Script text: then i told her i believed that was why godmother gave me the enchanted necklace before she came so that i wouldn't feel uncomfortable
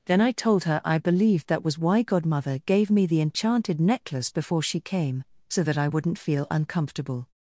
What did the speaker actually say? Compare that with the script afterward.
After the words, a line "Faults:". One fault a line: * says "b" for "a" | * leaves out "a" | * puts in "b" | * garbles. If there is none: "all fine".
then i told her i believed that was why godmother gave me the enchanted necklace before she came so that i wouldn't feel uncomfortable
Faults:
all fine